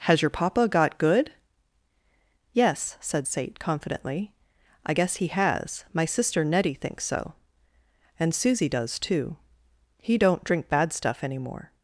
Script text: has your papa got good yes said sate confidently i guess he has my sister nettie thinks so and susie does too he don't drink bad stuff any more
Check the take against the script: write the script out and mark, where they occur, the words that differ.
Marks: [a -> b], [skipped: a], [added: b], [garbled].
has your papa got good yes said sate confidently i guess he has my sister nettie thinks so and susie does too he don't drink bad stuff any more